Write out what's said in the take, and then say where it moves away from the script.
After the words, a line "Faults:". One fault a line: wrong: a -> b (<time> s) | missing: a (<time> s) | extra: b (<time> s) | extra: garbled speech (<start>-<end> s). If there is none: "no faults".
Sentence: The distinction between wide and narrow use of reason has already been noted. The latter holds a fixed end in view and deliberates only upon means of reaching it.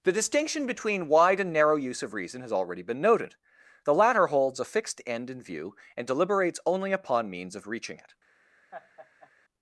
The distinction between wide and narrow use of reason has already been noted. The latter holds a fixed end in view and deliberates only upon means of reaching it.
Faults:
no faults